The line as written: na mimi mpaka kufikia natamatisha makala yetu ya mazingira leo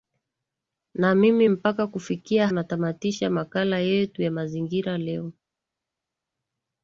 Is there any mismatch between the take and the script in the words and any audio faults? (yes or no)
no